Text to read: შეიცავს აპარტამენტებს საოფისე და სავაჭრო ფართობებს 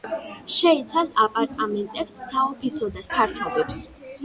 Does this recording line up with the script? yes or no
no